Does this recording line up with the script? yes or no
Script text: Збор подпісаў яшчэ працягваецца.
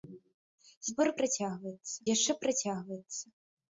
no